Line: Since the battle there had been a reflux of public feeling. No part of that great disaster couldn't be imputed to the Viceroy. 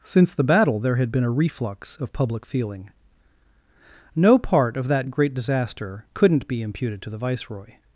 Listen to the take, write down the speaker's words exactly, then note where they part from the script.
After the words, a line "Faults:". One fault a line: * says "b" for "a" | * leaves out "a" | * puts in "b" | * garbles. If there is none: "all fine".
Since the battle there had been a reflux of public feeling. No part of that great disaster couldn't be imputed to the Viceroy.
Faults:
all fine